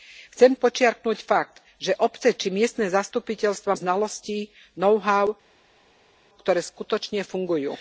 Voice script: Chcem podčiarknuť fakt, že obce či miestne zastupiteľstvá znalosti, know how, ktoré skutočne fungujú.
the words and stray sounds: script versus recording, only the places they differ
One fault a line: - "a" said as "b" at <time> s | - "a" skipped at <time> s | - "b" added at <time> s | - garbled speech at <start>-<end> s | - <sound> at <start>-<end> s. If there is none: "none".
none